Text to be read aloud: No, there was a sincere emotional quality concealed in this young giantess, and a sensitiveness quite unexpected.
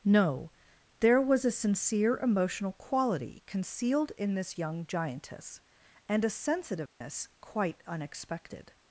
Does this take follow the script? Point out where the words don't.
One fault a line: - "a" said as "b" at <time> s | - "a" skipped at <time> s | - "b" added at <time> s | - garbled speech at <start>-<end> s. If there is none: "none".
none